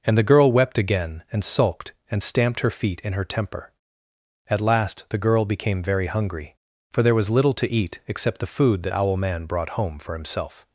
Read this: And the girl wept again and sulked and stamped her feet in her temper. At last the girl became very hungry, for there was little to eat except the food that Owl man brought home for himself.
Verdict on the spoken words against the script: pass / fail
pass